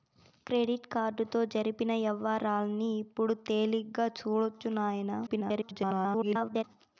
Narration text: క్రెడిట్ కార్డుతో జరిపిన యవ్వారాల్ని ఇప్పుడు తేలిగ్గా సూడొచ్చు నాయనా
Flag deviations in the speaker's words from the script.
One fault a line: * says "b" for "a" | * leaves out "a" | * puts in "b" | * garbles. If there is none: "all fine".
* garbles